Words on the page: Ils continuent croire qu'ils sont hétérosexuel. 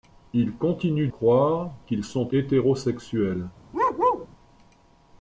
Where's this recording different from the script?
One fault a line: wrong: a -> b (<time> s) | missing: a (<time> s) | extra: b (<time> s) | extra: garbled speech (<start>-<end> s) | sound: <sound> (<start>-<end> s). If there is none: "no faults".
sound: bark (3.7-4.3 s)